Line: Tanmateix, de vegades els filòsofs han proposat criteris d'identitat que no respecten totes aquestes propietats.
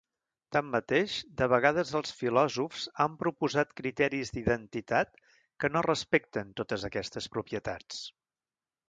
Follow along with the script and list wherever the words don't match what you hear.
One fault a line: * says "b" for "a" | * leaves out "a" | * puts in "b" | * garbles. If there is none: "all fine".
all fine